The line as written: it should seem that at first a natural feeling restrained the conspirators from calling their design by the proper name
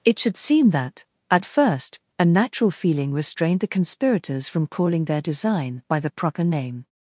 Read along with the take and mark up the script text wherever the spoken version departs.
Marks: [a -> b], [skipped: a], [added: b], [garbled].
it should seem that at first a natural feeling restrained the conspirators from calling their design by the proper name